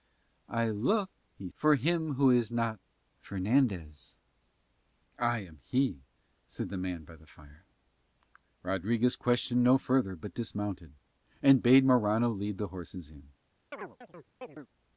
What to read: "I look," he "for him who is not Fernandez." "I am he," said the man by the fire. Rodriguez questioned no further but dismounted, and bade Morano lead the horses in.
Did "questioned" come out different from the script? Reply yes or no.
no